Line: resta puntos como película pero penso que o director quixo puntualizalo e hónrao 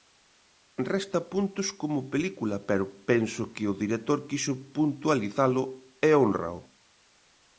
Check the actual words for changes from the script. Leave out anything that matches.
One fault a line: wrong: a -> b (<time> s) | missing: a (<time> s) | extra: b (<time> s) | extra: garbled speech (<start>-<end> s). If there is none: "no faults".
no faults